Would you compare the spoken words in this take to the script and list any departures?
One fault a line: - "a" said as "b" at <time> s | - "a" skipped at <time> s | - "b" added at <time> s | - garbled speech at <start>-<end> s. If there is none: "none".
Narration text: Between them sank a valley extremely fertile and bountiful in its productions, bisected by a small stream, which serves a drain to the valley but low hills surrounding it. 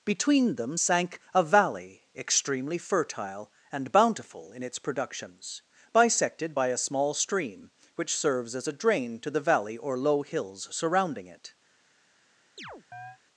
- "as" added at 8.5 s
- "but" said as "or" at 9.8 s